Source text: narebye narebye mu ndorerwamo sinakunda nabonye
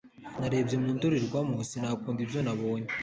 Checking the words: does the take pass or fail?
fail